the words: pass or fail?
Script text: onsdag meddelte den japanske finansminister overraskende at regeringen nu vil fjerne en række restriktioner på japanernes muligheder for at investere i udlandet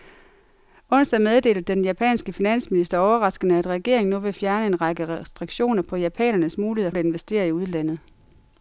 fail